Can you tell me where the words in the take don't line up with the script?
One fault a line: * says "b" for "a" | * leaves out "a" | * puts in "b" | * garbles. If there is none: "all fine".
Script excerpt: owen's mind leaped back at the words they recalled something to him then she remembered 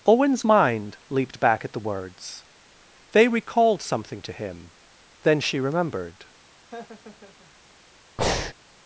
all fine